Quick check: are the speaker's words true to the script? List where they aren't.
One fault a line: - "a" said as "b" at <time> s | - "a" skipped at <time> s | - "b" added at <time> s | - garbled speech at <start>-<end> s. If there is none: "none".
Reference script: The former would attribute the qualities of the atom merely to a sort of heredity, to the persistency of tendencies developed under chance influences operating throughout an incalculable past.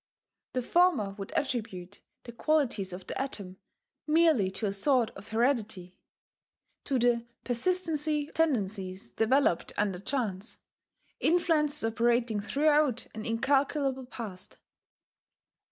- "of" skipped at 8.3 s